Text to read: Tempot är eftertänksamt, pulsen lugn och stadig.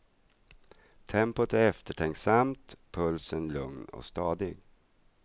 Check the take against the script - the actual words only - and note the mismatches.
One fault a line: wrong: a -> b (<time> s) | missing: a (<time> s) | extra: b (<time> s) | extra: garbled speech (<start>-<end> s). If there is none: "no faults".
no faults